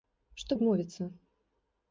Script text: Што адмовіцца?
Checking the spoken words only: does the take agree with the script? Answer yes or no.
yes